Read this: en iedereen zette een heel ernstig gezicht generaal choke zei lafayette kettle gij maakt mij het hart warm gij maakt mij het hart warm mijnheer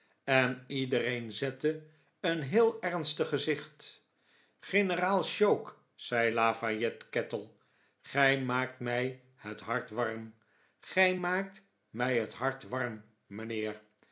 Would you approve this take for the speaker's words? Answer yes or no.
yes